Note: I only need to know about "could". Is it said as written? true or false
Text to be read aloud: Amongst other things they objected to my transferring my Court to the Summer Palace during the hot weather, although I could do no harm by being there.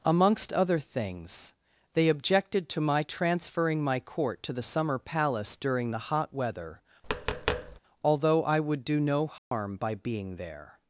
false